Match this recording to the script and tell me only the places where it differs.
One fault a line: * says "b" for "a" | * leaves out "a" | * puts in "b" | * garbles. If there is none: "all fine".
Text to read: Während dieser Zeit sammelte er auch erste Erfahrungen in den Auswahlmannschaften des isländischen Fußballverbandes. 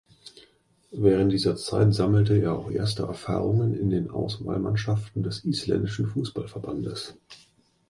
all fine